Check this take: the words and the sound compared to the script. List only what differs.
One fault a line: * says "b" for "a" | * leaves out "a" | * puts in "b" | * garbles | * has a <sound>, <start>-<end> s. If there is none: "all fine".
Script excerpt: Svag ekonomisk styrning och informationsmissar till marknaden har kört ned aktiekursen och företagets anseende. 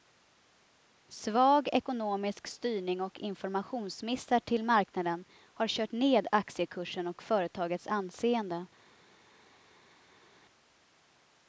all fine